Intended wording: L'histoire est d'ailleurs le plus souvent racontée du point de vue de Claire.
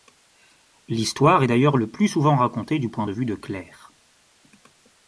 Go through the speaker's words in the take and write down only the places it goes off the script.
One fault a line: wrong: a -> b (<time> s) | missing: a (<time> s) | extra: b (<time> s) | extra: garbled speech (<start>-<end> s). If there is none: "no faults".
no faults